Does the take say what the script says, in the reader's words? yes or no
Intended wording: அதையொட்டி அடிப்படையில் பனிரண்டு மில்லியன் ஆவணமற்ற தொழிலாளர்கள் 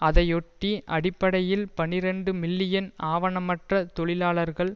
yes